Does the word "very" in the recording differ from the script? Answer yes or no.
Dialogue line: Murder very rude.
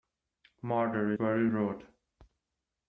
no